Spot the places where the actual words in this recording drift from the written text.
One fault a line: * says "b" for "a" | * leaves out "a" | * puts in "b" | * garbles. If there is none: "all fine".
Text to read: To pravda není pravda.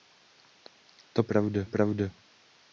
all fine